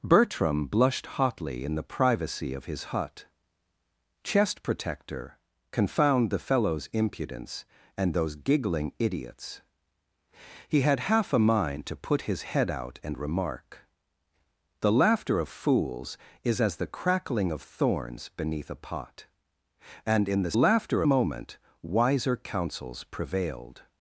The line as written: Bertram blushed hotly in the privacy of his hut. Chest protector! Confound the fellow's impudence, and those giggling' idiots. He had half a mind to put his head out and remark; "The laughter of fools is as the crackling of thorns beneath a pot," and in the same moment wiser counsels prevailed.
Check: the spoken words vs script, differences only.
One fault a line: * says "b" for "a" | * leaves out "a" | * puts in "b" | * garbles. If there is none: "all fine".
* says "laughter" for "same"